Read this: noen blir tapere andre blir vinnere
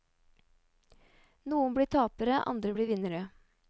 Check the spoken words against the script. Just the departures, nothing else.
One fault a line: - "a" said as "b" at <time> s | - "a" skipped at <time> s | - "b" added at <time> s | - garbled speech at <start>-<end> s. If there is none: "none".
none